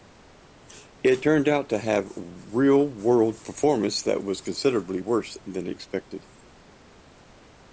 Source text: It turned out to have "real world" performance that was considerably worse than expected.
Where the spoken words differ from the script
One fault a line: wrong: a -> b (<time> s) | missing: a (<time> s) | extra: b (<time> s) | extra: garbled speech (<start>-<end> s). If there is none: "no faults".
no faults